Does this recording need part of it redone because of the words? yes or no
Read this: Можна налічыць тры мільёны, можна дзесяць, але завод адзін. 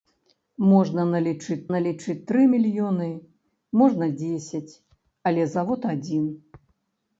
yes